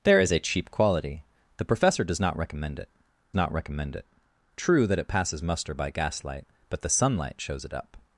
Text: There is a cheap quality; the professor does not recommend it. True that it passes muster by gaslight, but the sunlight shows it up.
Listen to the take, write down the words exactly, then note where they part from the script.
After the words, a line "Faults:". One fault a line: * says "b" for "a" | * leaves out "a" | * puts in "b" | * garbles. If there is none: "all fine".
There is a cheap quality; the professor does not recommend it not recommend it. True that it passes muster by gaslight, but the sunlight shows it up.
Faults:
* puts in "not recommend it"